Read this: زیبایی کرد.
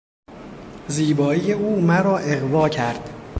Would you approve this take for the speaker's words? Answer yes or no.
no